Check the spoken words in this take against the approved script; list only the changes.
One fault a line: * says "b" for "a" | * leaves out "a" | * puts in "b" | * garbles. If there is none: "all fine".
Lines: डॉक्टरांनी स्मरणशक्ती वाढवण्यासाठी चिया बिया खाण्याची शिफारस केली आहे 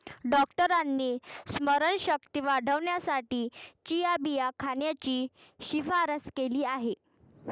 all fine